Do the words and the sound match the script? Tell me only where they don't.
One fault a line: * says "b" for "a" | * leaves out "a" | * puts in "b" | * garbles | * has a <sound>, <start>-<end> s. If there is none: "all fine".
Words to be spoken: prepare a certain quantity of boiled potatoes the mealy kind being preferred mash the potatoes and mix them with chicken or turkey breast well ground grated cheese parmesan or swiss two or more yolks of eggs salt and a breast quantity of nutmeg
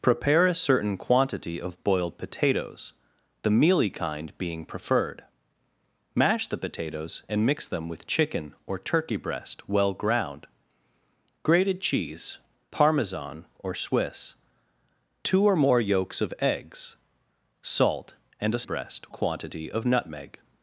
all fine